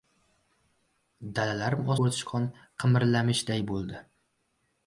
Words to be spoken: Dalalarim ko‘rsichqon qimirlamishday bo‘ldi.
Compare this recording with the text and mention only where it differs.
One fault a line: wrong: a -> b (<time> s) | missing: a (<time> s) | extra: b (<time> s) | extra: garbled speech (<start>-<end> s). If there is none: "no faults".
no faults